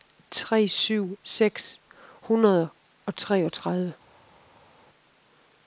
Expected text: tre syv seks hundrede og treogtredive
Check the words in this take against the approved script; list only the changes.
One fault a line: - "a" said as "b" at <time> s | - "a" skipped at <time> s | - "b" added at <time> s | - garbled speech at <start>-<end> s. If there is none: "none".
none